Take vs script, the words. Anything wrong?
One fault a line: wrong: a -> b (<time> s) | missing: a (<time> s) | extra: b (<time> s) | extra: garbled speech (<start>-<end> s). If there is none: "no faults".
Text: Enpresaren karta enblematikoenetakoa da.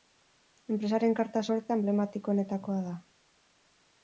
extra: sorta (1.5 s)